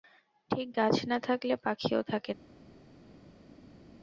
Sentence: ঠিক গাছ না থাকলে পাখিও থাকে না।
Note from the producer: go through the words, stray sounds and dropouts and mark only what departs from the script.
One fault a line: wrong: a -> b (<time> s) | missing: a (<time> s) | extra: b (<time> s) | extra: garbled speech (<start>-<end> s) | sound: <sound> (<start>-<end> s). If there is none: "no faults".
no faults